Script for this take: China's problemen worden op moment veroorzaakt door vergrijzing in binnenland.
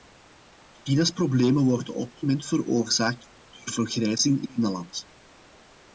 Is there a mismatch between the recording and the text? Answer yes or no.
no